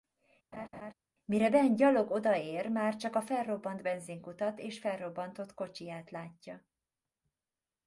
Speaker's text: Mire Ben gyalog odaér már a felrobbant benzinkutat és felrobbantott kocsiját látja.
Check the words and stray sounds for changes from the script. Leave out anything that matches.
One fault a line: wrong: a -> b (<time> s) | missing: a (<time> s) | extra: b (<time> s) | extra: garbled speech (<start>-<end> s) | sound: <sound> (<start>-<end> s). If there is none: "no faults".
sound: laugh (0.5-0.9 s)
extra: csak (3.0 s)